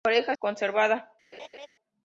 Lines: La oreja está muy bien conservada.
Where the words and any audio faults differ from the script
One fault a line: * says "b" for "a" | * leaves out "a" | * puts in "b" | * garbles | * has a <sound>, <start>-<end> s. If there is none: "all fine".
* leaves out "está muy bien"
* has a laugh, 1.3-1.7 s